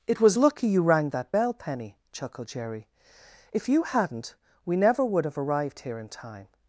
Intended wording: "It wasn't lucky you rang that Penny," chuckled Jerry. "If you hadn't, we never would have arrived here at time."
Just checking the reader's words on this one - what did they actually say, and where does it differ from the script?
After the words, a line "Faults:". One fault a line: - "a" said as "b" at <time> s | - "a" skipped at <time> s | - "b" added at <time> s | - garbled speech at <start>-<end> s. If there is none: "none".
"It was lucky you rang that bell, Penny," chuckled Jerry. "If you hadn't, we never would have arrived here in time."
Faults:
- "wasn't" said as "was" at 0.2 s
- "bell" added at 1.3 s
- "at" said as "in" at 6.0 s